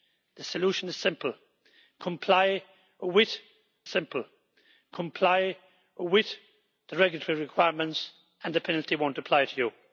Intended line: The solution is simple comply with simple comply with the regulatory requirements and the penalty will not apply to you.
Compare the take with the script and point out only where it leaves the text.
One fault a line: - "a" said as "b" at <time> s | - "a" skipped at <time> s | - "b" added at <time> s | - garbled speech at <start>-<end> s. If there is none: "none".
none